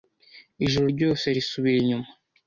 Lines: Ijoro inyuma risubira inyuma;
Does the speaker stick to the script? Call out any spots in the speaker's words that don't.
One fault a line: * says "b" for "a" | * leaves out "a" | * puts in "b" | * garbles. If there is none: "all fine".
* says "ryose" for "inyuma"